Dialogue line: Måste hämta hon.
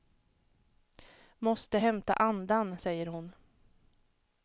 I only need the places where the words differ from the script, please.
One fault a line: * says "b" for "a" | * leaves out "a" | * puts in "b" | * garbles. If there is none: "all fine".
* puts in "andan säger"